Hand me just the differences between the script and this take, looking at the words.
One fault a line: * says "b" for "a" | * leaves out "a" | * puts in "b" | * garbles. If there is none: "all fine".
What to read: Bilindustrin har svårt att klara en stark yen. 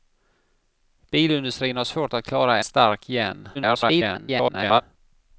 * leaves out "en"
* garbles